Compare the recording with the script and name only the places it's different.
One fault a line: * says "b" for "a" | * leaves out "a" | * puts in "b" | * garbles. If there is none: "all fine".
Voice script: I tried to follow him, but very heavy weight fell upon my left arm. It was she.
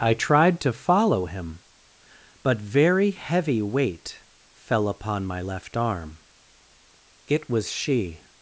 all fine